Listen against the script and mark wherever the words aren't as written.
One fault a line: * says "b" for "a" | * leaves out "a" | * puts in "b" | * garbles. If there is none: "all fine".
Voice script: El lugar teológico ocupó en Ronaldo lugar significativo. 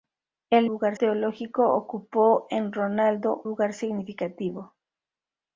all fine